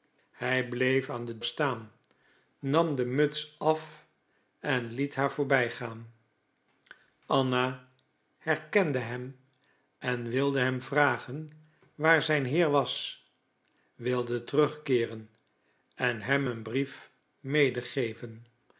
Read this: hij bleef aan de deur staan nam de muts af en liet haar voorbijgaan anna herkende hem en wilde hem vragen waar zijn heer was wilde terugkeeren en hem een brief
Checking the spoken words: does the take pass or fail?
fail